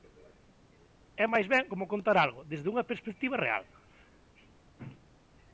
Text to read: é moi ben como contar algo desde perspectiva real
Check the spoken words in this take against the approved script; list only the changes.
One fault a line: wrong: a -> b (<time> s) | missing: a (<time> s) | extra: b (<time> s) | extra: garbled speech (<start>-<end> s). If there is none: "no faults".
wrong: moi -> máis (1.3 s)
extra: unha (2.7 s)